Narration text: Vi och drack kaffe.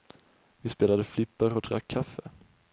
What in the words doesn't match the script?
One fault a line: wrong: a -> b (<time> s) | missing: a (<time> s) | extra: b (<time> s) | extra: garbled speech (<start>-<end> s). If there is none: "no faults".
extra: spelade flipper (0.7 s)